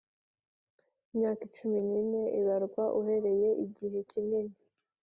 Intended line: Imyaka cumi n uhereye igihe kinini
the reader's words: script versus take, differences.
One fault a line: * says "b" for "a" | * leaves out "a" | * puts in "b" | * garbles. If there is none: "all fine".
* puts in "ine ibarwa"